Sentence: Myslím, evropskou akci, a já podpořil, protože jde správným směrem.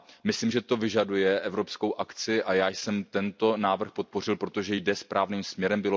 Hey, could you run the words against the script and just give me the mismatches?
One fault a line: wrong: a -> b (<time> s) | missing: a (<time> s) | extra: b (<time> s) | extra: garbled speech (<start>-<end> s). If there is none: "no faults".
extra: že to vyžaduje (0.5 s)
extra: jsem tento návrh (2.7 s)